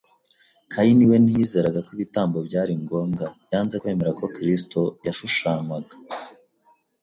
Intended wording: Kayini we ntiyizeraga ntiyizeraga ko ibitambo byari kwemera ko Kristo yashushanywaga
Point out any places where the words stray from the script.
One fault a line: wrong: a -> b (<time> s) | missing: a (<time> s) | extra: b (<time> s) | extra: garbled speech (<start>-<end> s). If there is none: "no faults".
missing: ntiyizeraga (1.8 s)
extra: ngombwa yanze (2.8 s)